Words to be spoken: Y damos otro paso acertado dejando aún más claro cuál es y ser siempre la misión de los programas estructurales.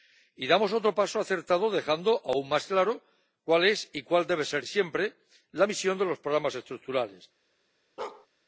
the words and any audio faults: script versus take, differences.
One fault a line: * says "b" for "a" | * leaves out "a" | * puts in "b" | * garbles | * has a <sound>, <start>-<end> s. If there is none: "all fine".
* puts in "cuál debe"
* has a bark, 8.0-8.3 s